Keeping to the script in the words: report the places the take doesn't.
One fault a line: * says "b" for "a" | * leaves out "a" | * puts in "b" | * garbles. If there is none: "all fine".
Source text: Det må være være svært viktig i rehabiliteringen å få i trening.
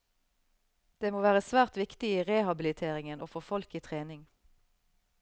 * leaves out "være"
* puts in "folk"